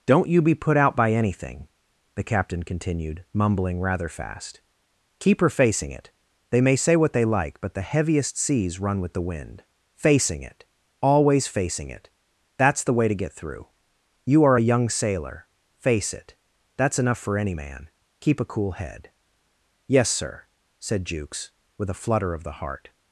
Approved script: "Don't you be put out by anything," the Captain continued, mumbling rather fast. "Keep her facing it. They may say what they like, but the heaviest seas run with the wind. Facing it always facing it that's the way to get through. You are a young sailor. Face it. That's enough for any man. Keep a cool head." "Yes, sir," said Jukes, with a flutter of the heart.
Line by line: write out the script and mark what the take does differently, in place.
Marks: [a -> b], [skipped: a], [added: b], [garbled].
"Don't you be put out by anything," the Captain continued, mumbling rather fast. "Keep her facing it. They may say what they like, but the heaviest seas run with the wind. Facing it always facing it that's the way to get through. You are a young sailor. Face it. That's enough for any man. Keep a cool head." "Yes, sir," said Jukes, with a flutter of the heart.